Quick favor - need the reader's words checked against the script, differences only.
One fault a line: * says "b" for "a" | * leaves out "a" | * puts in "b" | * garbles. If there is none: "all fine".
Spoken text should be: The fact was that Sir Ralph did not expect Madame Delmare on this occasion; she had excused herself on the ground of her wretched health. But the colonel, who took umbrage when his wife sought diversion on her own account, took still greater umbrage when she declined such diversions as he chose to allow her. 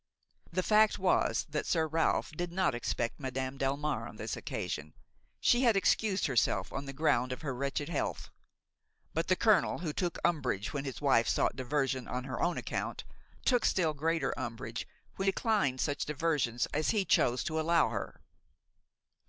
* leaves out "she"